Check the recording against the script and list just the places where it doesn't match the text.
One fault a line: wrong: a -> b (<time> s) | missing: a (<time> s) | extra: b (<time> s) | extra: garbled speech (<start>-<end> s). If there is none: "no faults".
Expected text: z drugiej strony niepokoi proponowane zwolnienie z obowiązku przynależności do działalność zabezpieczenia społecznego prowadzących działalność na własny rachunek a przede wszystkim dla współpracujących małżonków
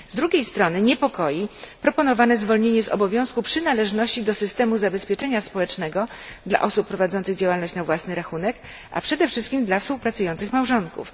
wrong: działalność -> systemu (4.3 s)
extra: dla osób (6.5 s)